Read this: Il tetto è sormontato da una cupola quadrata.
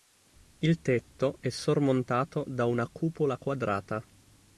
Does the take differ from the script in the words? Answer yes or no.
no